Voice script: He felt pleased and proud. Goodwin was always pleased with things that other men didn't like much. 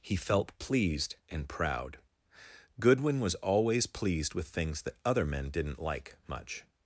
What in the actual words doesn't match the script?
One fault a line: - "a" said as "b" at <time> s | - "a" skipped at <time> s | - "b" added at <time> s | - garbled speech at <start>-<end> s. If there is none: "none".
none